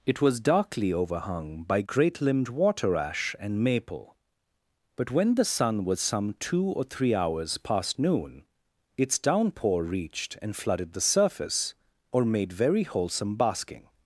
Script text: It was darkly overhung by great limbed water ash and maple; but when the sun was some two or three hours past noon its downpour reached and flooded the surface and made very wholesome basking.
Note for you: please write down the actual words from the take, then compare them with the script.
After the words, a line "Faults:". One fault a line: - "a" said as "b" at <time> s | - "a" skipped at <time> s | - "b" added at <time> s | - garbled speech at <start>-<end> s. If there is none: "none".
It was darkly overhung by great limbed water ash and maple; but when the sun was some two or three hours past noon its downpour reached and flooded the surface or made very wholesome basking.
Faults:
- "and" said as "or" at 12.1 s